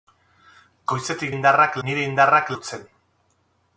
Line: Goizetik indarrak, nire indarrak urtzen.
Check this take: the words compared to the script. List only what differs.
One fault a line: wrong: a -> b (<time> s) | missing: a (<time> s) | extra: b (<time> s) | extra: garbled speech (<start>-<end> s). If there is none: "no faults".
no faults